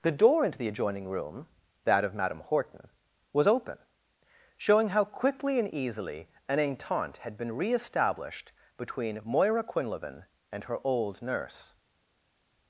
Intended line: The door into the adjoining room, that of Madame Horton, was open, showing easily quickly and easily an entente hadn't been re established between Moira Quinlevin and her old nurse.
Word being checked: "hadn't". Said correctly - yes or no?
no